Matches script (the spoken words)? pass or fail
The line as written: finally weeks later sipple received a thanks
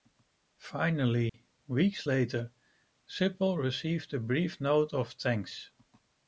fail